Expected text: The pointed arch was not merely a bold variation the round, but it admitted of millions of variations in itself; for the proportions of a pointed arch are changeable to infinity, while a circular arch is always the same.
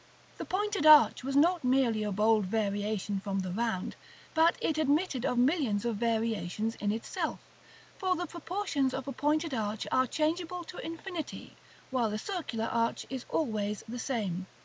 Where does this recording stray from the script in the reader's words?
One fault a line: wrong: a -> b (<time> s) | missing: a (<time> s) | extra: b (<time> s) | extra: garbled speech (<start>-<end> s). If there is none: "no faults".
extra: from (3.2 s)